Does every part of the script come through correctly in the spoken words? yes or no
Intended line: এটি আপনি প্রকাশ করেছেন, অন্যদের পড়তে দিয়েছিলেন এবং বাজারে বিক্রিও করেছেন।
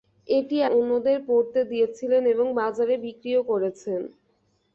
no